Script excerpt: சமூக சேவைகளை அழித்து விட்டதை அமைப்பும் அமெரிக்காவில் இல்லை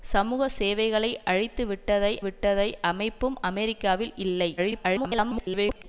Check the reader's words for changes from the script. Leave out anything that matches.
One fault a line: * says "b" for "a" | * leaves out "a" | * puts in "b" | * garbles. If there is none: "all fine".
* puts in "விட்டதை"
* garbles